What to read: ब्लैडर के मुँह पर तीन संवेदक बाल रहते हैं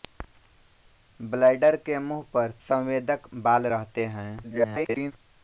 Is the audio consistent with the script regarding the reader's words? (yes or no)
no